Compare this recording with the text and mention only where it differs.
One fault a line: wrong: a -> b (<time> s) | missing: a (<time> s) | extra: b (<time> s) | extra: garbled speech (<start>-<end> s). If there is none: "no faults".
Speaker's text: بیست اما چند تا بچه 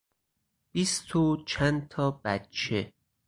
wrong: اما -> و (1.1 s)